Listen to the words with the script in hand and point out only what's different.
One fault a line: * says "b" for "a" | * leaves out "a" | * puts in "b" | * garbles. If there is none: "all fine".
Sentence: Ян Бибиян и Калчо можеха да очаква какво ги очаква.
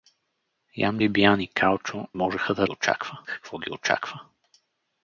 all fine